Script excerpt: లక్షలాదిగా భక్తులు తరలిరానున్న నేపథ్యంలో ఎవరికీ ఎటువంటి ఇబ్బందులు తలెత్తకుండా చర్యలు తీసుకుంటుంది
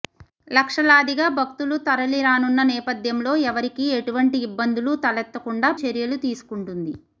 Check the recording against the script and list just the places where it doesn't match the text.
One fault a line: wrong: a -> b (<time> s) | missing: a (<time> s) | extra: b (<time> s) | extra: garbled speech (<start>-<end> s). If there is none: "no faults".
no faults